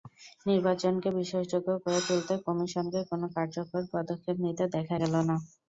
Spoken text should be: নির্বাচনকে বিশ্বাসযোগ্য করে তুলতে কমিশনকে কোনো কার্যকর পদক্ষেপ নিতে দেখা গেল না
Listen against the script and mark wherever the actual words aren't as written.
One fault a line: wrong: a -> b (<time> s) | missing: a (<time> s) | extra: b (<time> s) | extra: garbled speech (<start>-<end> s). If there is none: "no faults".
no faults